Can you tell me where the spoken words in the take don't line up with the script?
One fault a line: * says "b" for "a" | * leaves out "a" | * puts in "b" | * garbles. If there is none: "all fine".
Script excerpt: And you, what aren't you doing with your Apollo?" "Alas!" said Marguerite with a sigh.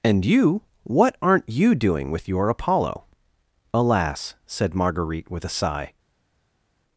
all fine